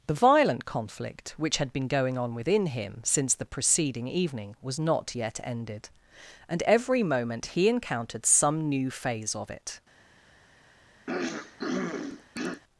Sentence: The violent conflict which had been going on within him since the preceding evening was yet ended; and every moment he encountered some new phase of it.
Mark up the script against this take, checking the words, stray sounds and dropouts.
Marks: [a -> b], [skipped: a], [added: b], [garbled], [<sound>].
The violent conflict which had been going on within him since the preceding evening was [added: not] yet ended; and every moment he encountered some new phase of it. [throat clearing]